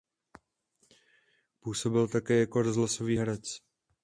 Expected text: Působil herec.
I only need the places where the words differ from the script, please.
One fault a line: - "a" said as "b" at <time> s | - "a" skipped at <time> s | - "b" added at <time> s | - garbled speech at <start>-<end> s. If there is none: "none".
- "také jako rozhlasový" added at 2.1 s